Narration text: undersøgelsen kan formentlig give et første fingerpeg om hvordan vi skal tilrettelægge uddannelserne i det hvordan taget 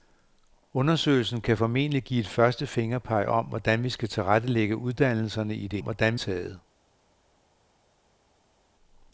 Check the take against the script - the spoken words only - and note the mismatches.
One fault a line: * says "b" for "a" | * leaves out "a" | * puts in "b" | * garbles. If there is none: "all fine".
all fine